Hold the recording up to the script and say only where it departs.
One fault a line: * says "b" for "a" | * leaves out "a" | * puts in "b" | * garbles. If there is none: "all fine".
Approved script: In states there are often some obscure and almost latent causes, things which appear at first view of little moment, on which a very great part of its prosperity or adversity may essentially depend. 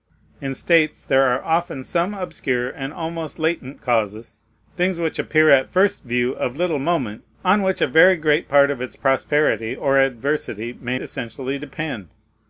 all fine